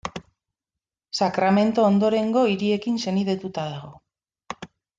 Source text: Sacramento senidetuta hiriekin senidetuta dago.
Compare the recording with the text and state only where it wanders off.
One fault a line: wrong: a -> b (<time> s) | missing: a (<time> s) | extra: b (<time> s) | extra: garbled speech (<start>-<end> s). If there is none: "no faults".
wrong: senidetuta -> ondorengo (1.9 s)